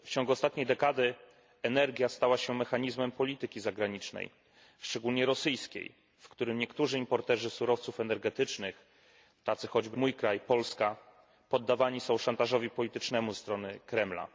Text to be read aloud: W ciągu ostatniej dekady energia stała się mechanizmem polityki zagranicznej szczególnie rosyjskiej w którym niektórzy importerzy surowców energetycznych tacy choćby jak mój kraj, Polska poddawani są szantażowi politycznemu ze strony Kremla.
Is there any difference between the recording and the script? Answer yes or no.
yes